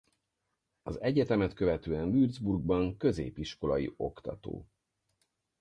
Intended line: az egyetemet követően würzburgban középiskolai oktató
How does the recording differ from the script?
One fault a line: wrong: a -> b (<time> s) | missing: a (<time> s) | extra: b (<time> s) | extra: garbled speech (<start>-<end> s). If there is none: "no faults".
no faults